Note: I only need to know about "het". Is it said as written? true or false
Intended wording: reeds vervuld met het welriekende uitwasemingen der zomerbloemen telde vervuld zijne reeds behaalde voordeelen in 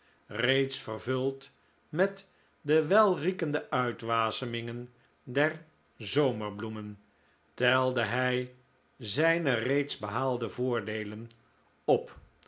false